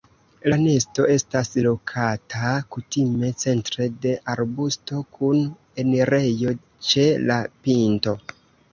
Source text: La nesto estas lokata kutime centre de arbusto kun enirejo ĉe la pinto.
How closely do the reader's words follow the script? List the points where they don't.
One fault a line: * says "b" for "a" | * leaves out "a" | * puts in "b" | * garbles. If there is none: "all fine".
all fine